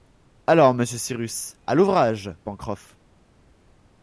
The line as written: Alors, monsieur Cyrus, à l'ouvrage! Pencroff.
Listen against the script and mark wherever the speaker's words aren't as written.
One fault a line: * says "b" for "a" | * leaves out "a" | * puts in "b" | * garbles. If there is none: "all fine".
all fine